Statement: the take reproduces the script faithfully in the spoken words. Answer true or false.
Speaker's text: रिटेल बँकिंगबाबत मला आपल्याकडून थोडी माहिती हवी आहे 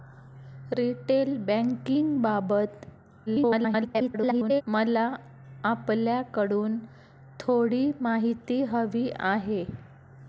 false